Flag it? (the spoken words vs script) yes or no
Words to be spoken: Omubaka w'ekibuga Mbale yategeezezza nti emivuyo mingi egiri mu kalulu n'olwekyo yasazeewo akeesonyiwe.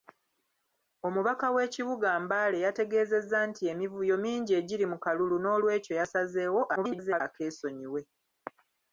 yes